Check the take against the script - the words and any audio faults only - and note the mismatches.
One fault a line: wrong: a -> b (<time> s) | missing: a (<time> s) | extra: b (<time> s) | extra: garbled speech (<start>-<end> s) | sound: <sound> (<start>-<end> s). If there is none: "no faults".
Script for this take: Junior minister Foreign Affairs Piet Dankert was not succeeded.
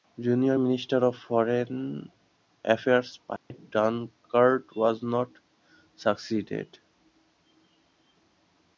extra: of (1.0 s)
sound: dropout (3.4-3.5 s)